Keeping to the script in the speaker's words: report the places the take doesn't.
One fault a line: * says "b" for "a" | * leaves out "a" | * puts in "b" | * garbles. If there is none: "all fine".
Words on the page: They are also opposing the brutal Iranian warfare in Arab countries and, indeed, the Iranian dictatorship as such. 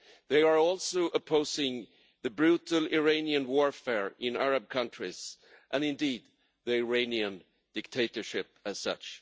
all fine